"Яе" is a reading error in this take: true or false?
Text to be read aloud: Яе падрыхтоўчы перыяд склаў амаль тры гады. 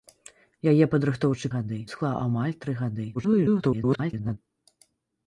false